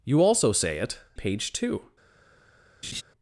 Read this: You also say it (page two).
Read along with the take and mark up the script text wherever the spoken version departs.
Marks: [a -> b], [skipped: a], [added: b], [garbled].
You also say it (page two).